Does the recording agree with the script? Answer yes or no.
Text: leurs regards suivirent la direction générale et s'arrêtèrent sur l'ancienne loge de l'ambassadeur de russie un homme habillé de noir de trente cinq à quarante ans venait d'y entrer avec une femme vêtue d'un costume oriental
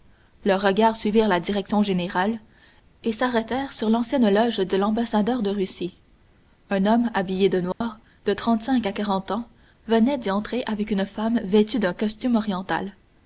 yes